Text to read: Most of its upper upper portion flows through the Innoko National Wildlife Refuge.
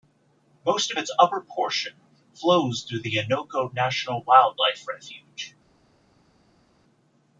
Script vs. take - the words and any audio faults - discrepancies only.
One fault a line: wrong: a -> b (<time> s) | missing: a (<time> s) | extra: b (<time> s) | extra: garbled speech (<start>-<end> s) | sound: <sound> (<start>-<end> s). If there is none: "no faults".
missing: upper (1.4 s)